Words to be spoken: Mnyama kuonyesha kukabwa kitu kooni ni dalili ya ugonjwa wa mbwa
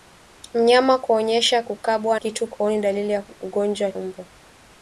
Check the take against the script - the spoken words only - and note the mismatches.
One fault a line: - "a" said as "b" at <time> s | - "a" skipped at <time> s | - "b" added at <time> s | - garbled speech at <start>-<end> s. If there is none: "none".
none